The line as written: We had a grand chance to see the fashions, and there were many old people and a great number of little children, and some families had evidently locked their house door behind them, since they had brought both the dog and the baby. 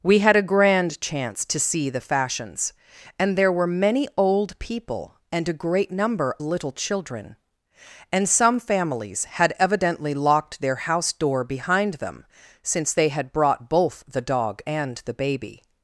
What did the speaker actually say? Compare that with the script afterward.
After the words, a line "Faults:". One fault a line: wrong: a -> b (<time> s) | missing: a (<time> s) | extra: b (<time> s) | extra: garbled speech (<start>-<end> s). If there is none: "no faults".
We had a grand chance to see the fashions, and there were many old people and a great number little children, and some families had evidently locked their house door behind them, since they had brought both the dog and the baby.
Faults:
missing: of (6.3 s)